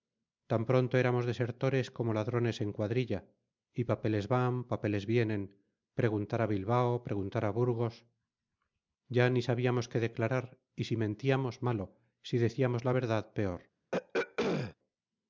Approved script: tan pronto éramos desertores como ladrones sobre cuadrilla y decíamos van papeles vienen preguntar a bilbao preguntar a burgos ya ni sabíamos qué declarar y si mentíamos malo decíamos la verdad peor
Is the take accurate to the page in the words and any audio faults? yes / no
no